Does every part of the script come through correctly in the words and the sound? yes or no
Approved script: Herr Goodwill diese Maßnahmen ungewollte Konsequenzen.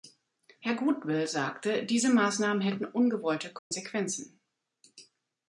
no